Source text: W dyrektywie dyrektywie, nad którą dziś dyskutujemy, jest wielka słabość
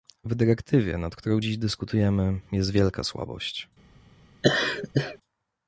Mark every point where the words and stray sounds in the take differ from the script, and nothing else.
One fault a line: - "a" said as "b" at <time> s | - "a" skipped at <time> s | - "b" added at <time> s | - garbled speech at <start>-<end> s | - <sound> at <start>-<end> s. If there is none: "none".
- "dyrektywie" skipped at 1.0 s
- laugh at 4.4-5.2 s